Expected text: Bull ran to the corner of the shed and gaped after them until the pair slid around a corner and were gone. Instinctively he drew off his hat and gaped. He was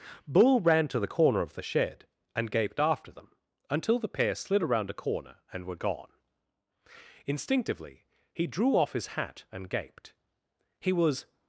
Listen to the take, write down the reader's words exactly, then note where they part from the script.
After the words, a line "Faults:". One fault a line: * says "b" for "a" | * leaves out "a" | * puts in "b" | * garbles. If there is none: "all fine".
Bull ran to the corner of the shed and gaped after them until the pair slid around a corner and were gone. Instinctively he drew off his hat and gaped. He was
Faults:
all fine